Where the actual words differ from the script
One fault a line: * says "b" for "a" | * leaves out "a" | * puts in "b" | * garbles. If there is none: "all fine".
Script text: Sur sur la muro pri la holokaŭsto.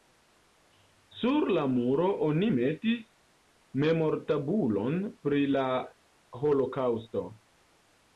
* leaves out "sur"
* puts in "oni metis memortabulon"